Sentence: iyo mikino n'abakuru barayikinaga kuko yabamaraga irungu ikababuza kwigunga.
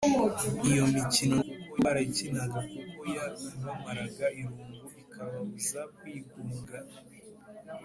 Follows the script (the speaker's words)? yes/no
no